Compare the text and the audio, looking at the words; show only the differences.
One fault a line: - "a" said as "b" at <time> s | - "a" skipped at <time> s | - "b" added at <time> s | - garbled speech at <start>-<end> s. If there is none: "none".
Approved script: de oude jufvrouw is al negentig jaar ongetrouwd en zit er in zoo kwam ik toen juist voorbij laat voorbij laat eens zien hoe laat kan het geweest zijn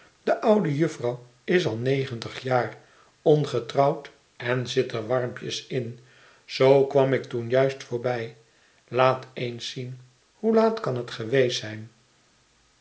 - "warmpjes" added at 5.1 s
- "voorbij laat" skipped at 9.3 s